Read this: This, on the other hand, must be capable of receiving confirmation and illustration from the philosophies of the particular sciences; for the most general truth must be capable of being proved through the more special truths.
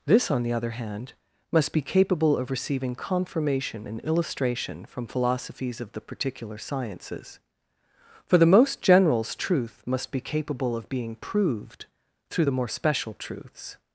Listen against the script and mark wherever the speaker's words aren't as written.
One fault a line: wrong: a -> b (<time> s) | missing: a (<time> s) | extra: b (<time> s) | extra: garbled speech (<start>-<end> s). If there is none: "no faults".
missing: the (5.1 s)
wrong: general -> generals (8.8 s)